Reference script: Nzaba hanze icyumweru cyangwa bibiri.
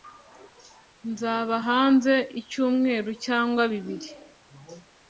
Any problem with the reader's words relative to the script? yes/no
no